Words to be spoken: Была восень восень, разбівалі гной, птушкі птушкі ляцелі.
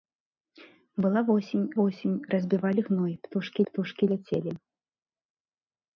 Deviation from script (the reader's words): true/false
false